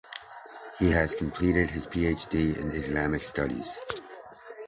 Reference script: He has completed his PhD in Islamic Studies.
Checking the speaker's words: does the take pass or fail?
pass